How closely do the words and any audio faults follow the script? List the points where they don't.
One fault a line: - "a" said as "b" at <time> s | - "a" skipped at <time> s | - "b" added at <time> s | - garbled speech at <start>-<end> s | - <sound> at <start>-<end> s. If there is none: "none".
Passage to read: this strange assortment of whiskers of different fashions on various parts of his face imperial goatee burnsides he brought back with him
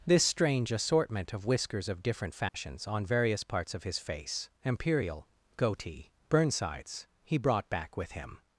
- dropout at 2.5-2.5 s